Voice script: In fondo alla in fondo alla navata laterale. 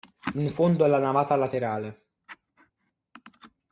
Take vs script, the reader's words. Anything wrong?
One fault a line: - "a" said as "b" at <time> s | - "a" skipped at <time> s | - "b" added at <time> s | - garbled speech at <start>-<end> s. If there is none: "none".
- "in fondo alla" skipped at 1.0 s